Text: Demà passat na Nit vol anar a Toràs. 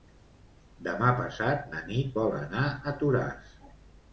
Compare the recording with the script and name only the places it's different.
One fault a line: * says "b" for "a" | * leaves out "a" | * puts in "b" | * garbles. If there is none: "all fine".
all fine